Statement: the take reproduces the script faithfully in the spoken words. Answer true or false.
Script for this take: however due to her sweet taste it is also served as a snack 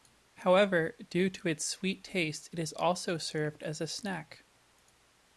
false